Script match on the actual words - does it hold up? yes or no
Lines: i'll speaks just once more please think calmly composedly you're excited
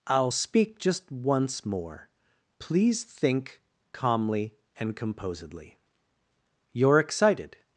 no